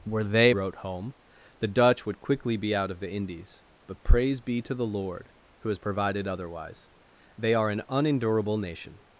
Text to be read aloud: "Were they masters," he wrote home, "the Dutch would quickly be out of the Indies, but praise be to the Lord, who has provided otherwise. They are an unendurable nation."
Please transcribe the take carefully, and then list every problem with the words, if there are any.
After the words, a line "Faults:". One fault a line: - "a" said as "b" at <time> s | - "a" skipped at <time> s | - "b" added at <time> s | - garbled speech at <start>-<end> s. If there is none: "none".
"Were they wrote home, "the Dutch would quickly be out of the Indies, but praise be to the Lord, who has provided otherwise. They are an unendurable nation."
Faults:
- "masters he" skipped at 0.6 s